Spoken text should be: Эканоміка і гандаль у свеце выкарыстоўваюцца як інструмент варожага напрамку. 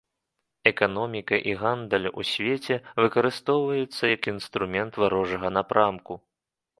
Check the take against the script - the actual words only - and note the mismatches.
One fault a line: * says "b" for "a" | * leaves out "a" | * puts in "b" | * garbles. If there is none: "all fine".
all fine